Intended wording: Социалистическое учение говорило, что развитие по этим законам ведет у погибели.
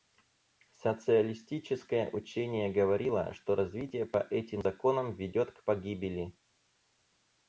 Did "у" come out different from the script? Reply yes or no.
yes